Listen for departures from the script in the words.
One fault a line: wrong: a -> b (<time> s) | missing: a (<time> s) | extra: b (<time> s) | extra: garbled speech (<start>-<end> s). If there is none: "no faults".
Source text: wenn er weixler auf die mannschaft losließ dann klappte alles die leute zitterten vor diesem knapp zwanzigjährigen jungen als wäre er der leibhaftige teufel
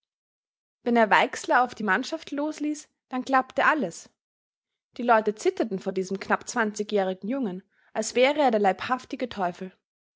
no faults